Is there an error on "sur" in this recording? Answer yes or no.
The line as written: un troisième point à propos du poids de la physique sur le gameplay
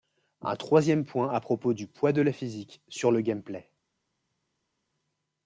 no